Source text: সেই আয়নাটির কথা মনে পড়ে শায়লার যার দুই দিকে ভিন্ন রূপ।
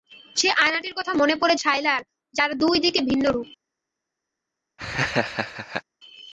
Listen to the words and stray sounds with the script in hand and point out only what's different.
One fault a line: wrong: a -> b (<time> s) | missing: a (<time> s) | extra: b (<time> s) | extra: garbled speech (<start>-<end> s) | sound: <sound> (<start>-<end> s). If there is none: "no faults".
sound: laugh (4.8-5.8 s)